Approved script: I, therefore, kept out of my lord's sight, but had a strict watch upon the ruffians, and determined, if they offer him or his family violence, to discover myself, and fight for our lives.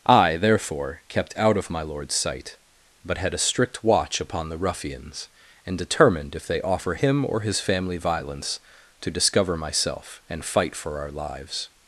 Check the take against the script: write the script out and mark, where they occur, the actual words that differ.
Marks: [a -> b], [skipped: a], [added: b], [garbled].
I, therefore, kept out of my lord's sight, but had a strict watch upon the ruffians, and determined, if they offer him or his family violence, to discover myself, and fight for our lives.